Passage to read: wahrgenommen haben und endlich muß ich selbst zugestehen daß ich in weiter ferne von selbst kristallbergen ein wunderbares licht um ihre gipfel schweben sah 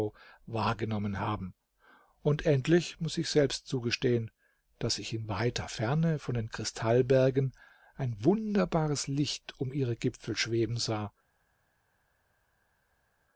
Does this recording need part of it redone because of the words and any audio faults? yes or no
yes